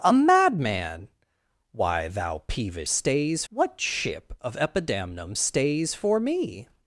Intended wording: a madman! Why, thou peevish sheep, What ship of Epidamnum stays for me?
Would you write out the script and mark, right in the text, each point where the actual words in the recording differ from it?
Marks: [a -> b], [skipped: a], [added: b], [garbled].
a madman! Why, thou peevish [sheep, -> stays] What ship of Epidamnum stays for me?